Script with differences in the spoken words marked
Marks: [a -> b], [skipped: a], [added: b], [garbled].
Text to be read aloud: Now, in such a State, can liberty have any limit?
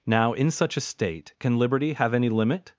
Now, in such a State, can liberty have any limit?